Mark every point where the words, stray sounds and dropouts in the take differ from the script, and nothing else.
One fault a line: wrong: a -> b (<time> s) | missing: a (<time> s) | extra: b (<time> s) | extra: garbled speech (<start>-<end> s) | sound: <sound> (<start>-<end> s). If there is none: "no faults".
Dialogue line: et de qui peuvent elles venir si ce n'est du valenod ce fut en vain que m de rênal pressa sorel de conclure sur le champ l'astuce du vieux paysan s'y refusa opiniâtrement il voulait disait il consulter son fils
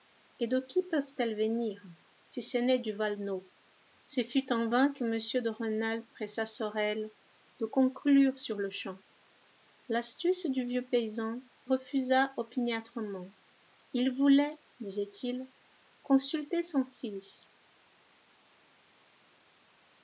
missing: s'y (11.4 s)